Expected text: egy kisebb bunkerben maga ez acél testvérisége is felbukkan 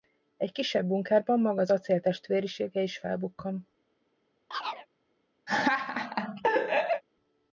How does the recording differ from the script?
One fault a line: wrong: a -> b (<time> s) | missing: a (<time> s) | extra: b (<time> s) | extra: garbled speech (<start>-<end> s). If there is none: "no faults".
wrong: ez -> az (1.6 s)